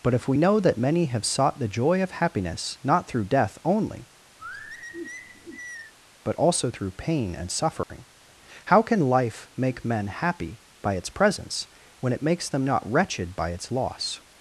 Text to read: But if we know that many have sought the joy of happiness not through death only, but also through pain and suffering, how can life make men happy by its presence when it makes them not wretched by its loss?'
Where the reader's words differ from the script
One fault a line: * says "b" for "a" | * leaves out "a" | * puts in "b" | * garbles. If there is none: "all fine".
all fine